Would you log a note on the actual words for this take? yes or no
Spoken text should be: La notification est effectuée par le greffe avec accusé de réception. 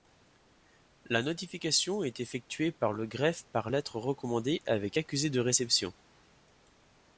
yes